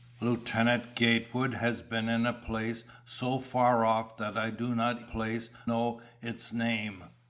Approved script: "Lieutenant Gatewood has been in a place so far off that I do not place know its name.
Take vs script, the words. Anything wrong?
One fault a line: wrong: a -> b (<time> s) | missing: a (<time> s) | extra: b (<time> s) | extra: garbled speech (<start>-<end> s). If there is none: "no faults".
no faults